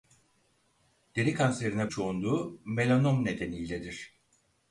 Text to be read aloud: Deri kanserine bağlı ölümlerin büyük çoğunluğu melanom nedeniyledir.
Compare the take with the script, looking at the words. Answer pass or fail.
fail